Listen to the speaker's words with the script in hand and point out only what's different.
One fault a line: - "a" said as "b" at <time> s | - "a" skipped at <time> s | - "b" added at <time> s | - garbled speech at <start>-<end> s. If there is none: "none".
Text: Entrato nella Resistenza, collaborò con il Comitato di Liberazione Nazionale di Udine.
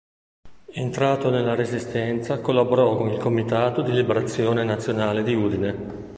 none